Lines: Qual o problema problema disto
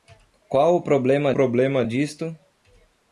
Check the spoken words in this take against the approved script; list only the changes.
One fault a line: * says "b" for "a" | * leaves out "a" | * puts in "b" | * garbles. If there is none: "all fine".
all fine